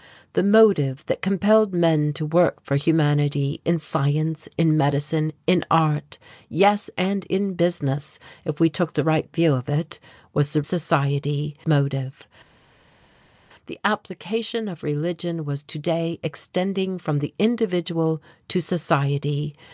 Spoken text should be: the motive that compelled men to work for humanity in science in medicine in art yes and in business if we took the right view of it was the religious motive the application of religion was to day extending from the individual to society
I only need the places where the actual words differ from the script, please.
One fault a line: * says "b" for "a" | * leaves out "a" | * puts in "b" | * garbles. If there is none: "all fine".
* says "society" for "religious"